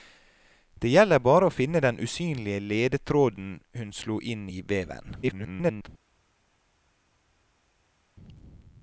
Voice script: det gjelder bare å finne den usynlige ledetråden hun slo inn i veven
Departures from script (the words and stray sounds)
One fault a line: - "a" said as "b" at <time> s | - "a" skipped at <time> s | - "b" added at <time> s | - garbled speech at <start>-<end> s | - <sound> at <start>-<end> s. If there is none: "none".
- garbled speech at 5.2-5.9 s